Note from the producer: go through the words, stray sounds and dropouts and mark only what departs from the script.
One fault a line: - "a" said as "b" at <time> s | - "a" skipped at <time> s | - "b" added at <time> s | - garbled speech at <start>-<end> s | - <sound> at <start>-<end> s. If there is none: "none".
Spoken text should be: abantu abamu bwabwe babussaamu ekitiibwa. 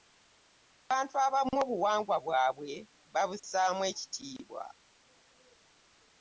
- "obuwangwa" added at 1.6 s